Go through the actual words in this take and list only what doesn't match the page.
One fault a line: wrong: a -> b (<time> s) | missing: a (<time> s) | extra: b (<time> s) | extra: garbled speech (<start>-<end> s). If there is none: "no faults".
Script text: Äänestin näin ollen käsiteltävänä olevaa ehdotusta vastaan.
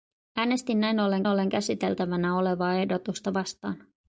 extra: ollen (1.3 s)